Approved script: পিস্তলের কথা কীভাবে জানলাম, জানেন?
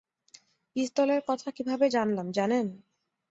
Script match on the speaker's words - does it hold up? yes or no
yes